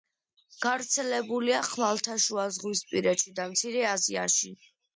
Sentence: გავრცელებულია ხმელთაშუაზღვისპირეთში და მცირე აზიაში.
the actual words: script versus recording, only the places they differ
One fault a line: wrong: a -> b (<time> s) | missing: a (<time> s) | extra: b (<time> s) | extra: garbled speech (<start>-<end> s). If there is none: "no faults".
no faults